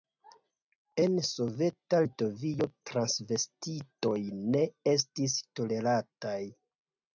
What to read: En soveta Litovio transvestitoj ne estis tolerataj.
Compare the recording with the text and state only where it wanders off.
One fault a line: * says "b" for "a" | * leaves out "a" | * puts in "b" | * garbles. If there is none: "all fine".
all fine